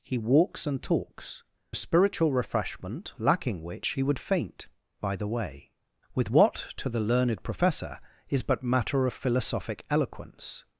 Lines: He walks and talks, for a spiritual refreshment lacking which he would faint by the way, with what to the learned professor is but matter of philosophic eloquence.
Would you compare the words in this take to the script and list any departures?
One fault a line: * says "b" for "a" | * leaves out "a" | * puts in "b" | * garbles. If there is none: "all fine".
* leaves out "for"